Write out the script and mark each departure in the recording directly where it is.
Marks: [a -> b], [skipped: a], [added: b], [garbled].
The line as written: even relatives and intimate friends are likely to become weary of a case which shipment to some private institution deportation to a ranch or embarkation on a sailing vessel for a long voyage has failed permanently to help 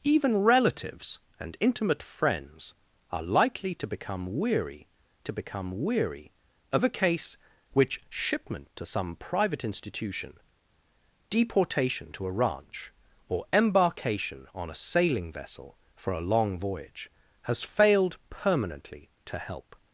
even relatives and intimate friends are likely to become weary [added: to become weary] of a case which shipment to some private institution deportation to a ranch or embarkation on a sailing vessel for a long voyage has failed permanently to help